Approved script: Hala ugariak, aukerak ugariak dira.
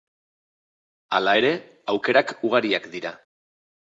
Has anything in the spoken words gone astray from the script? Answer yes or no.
yes